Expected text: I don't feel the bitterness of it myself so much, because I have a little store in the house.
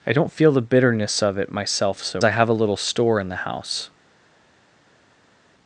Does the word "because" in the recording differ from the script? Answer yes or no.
yes